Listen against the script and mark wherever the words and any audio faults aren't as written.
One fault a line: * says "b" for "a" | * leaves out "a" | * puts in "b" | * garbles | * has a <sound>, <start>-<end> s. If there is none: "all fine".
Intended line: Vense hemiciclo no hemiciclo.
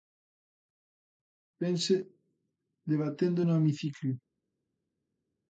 * says "debatendo" for "hemiciclo"